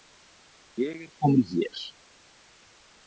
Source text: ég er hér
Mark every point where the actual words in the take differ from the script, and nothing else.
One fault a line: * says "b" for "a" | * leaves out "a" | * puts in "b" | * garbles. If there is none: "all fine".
* puts in "komin"